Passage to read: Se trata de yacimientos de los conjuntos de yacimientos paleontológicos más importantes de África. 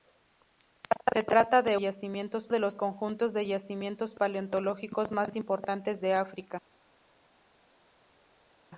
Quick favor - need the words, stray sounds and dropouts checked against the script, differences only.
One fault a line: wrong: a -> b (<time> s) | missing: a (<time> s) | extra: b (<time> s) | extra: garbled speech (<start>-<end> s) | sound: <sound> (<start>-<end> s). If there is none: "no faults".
no faults